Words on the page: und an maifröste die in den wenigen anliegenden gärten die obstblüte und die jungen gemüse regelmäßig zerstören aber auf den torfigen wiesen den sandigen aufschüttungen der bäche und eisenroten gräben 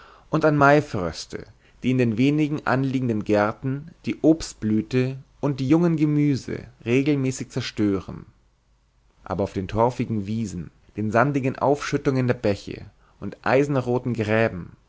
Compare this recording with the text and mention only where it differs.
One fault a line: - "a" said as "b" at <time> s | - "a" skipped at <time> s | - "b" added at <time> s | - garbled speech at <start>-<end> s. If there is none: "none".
none